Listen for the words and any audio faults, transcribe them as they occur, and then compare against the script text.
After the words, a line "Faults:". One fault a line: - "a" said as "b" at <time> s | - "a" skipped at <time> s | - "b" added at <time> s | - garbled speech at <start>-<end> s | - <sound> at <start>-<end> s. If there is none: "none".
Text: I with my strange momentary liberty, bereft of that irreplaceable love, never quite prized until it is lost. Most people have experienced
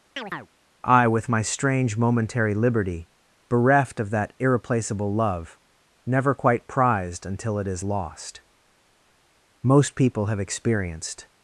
I with my strange momentary liberty, bereft of that irreplaceable love, never quite prized until it is lost. Most people have experienced
Faults:
- chirp at 0.2-0.5 s